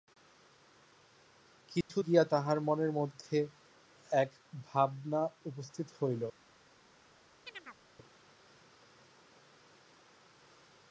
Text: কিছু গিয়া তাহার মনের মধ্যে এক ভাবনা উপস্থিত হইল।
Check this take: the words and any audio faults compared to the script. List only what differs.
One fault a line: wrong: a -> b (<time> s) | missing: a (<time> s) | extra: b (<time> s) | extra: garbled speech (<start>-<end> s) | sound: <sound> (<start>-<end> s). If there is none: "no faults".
sound: dropout (1.8-1.9 s)
sound: chirp (7.5-7.8 s)